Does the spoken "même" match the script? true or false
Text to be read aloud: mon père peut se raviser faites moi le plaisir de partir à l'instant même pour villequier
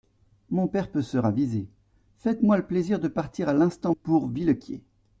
false